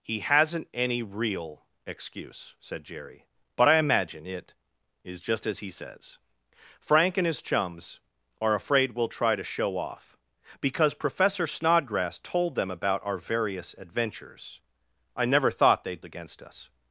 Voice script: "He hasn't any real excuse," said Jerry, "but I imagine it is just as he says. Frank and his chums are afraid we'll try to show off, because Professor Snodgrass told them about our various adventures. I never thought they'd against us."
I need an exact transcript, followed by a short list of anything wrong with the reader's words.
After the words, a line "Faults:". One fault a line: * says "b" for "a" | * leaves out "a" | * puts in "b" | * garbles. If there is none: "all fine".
"He hasn't any real excuse," said Jerry, "but I imagine it is just as he says. Frank and his chums are afraid we'll try to show off, because Professor Snodgrass told them about our various adventures. I never thought they'd against us."
Faults:
all fine